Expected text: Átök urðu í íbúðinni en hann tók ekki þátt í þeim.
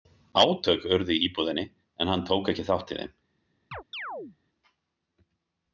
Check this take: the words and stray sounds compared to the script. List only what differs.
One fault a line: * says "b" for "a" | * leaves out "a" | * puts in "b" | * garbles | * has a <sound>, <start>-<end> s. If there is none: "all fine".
* has a chirp, 3.7-4.4 s